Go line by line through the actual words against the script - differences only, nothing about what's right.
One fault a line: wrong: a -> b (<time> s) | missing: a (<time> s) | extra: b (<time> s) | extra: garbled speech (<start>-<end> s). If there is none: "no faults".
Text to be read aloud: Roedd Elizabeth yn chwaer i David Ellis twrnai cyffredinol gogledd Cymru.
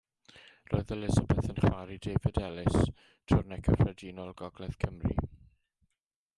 no faults